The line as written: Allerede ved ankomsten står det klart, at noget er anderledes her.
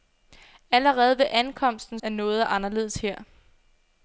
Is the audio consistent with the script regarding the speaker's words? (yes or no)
no